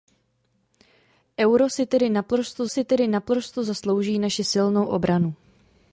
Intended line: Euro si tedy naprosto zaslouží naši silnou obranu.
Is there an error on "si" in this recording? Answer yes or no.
no